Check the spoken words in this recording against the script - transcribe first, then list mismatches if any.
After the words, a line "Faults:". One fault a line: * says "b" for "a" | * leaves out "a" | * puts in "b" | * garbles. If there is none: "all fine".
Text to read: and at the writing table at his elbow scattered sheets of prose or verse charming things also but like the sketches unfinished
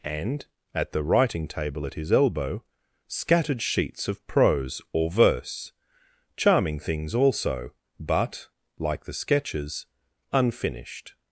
and at the writing table at his elbow scattered sheets of prose or verse charming things also but like the sketches unfinished
Faults:
all fine